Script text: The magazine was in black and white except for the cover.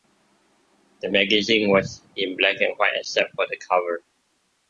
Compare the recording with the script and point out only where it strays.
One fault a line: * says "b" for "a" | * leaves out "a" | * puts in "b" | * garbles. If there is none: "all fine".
all fine